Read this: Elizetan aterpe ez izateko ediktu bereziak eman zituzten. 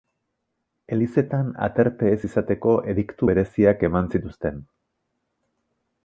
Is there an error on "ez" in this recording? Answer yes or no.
no